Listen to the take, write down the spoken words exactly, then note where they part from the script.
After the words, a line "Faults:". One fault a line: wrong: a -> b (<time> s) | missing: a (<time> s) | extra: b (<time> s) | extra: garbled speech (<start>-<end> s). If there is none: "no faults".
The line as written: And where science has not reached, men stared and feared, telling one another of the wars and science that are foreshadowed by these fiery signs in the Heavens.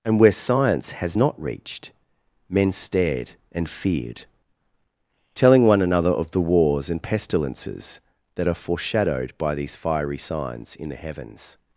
And where science has not reached, men stared and feared, telling one another of the wars and pestilences that are foreshadowed by these fiery signs in the Heavens.
Faults:
wrong: science -> pestilences (7.0 s)